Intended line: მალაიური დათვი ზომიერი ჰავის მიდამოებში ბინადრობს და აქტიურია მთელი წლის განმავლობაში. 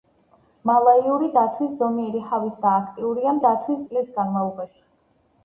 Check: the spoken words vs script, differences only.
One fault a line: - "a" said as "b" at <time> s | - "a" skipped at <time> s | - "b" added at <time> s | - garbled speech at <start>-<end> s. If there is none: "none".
- "მიდამოებში ბინადრობს" skipped at 2.6 s
- "მთელი" said as "დათვი" at 3.4 s